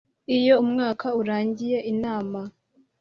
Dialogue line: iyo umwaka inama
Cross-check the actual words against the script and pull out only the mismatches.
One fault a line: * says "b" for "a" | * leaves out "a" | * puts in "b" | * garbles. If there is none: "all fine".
* puts in "urangiye"